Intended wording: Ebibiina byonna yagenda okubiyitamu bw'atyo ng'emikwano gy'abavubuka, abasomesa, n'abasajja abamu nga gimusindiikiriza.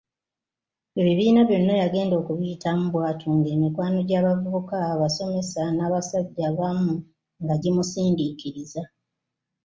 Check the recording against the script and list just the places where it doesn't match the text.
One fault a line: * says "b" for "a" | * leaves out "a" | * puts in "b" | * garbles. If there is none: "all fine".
all fine